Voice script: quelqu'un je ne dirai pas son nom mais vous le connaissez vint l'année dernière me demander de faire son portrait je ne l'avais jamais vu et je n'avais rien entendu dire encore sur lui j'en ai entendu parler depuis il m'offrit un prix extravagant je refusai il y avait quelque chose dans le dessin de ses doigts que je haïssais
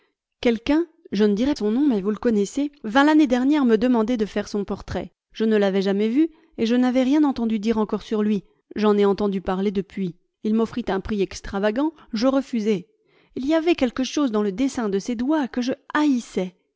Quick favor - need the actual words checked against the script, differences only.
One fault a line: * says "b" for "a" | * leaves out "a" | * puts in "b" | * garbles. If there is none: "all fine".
* leaves out "pas"